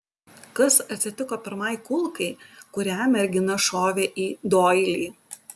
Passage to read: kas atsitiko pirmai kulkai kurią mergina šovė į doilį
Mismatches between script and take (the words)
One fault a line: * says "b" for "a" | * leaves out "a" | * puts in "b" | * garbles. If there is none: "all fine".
all fine